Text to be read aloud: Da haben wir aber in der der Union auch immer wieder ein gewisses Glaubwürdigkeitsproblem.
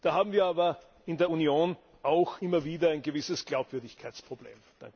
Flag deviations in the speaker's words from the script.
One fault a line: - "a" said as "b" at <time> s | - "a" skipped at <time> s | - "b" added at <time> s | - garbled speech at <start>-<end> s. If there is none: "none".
- "der" skipped at 1.3 s